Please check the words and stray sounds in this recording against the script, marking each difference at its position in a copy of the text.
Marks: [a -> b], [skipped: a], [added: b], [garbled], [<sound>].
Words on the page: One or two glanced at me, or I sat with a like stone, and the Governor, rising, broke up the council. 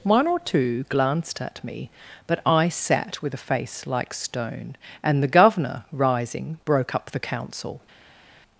One or two glanced at me, [or -> but] I sat with a [added: face] like stone, and the Governor, rising, broke up the council.